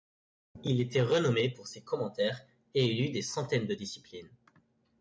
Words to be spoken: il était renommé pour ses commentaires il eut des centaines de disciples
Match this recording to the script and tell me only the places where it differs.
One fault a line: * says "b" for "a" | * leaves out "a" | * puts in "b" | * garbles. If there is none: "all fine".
* puts in "et"